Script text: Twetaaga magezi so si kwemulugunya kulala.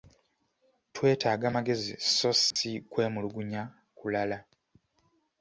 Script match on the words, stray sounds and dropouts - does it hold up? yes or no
no